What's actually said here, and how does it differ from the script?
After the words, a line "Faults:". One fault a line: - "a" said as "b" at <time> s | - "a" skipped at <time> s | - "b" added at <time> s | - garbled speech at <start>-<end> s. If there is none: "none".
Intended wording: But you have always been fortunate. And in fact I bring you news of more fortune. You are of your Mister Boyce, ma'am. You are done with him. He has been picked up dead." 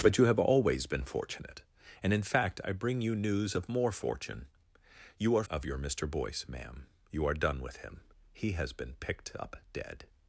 But you have always been fortunate. And in fact I bring you news of more fortune. You are of your Mister Boyce, ma'am. You are done with him. He has been picked up dead."
Faults:
none